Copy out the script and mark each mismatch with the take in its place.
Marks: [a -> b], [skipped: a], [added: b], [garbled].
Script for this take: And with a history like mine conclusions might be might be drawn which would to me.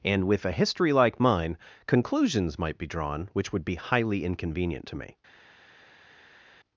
And with a history like mine conclusions might be [skipped: might be] drawn which would [added: be highly inconvenient] to me.